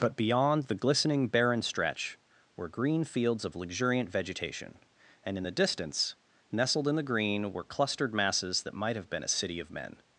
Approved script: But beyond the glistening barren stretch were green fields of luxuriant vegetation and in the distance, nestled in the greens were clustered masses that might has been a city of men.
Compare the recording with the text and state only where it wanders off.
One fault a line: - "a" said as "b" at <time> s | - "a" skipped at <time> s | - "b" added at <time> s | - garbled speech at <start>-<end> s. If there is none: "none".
- "greens" said as "green" at 7.0 s
- "has" said as "have" at 9.0 s